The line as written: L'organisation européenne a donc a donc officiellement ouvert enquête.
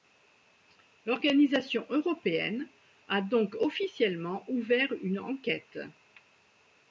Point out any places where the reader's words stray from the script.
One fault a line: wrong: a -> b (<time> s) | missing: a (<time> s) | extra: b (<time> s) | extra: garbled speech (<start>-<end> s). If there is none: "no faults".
missing: a donc (3.5 s)
extra: une (5.0 s)